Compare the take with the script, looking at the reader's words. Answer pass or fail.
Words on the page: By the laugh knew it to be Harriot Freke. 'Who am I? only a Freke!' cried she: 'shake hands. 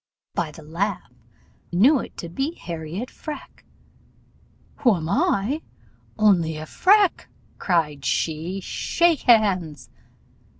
pass